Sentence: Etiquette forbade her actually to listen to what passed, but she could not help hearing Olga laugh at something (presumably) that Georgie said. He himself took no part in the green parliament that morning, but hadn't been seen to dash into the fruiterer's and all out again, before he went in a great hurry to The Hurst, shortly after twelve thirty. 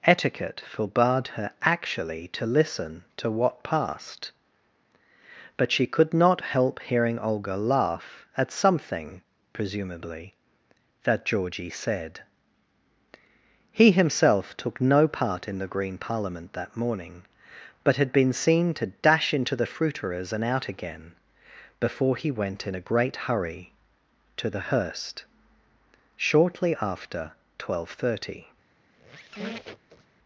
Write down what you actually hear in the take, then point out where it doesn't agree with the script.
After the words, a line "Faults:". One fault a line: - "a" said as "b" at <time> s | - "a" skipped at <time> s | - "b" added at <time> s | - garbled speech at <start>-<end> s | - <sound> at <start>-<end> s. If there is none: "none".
Etiquette forbade her actually to listen to what passed, but she could not help hearing Olga laugh at something (presumably) that Georgie said. He himself took no part in the green parliament that morning, but had been seen to dash into the fruiterer's and out again, before he went in a great hurry to The Hurst, shortly after twelve thirty.
Faults:
- "hadn't" said as "had" at 18.0 s
- "all" skipped at 20.4 s
- squeak at 28.9-30.2 s